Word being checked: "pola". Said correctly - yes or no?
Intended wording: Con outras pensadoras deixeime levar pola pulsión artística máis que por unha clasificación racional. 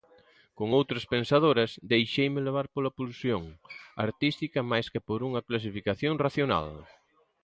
yes